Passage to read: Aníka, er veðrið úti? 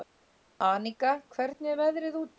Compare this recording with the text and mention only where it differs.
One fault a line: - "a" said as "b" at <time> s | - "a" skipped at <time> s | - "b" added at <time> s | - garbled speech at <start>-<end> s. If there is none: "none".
- "hvernig" added at 1.4 s